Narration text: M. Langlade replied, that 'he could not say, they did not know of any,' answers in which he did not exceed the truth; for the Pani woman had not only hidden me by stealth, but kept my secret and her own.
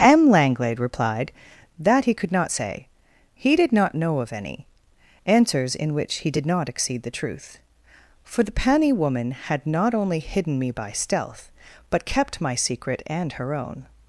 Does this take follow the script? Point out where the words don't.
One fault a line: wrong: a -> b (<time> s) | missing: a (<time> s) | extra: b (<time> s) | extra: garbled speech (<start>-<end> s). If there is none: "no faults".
wrong: they -> he (3.3 s)